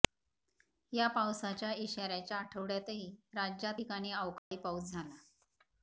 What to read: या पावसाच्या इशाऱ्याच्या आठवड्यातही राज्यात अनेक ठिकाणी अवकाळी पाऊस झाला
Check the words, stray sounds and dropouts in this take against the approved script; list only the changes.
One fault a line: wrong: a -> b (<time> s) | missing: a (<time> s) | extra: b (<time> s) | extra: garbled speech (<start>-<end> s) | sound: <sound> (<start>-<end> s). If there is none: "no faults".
missing: अनेक (3.8 s)
sound: dropout (4.4-4.5 s)